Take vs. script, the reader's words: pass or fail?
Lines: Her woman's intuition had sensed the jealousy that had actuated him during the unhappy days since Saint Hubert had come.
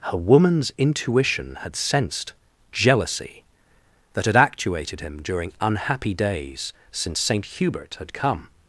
fail